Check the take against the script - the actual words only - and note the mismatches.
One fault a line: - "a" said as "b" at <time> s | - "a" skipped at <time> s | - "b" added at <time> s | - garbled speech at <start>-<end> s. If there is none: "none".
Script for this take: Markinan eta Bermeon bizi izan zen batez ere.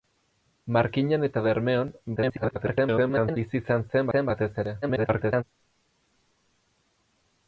- garbled speech at 2.2-3.4 s
- "zen" added at 4.1 s
- garbled speech at 4.8-5.4 s